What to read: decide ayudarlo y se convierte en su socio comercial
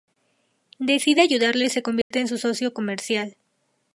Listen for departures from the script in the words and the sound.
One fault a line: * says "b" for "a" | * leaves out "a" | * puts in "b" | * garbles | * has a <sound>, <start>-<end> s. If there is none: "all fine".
* has a dropout, 2.0-2.1 s